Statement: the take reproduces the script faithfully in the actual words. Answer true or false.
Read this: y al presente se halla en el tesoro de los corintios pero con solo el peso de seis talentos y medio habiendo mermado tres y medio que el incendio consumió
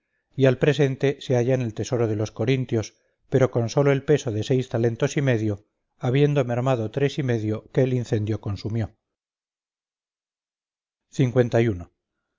true